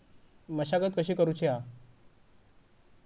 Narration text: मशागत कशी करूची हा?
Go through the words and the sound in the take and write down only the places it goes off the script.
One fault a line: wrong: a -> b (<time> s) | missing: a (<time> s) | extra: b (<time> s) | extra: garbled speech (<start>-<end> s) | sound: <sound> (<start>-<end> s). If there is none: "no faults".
no faults